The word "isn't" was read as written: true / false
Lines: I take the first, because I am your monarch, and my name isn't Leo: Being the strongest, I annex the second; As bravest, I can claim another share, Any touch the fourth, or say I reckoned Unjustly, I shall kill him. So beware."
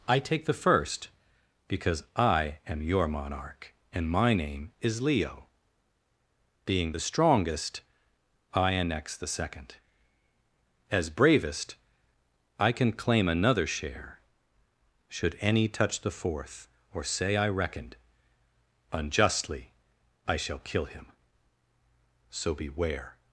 false